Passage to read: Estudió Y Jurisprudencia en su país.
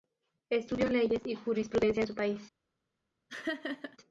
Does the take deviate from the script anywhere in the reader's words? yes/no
yes